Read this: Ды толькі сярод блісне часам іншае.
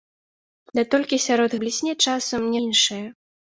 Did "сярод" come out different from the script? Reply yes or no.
no